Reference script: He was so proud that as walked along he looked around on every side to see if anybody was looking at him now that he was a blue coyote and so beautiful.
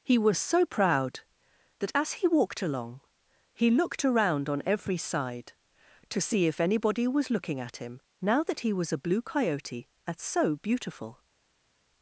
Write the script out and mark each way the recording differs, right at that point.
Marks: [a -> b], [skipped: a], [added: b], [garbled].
He was so proud that as [added: he] walked along he looked around on every side to see if anybody was looking at him now that he was a blue coyote and so beautiful.